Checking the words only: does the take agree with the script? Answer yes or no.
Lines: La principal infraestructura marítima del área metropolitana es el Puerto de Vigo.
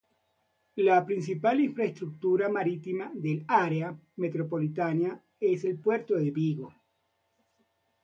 yes